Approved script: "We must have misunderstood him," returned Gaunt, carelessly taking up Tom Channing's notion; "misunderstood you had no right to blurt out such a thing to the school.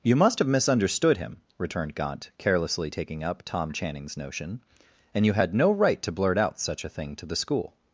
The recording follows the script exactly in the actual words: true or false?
false